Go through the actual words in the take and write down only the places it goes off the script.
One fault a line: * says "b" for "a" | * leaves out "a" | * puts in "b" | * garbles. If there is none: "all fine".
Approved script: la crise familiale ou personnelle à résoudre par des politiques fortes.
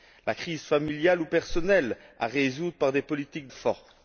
all fine